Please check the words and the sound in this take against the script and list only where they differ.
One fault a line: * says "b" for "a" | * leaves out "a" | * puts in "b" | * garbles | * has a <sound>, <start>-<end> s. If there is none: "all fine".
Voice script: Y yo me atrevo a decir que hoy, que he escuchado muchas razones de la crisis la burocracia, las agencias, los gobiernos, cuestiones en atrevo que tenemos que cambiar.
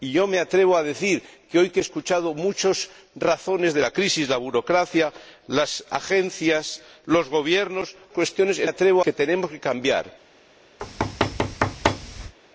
* has a thud, 10.8-12.3 s